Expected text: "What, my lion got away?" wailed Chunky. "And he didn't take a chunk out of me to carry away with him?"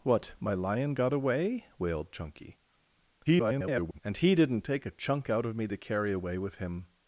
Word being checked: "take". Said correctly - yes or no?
yes